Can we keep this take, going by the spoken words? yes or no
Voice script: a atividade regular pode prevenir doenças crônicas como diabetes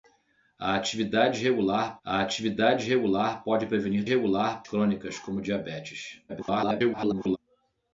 no